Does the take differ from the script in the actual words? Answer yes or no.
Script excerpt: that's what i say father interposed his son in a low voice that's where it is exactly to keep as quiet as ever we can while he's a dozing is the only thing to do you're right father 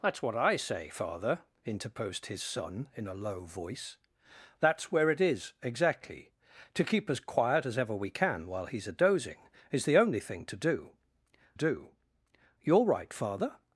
yes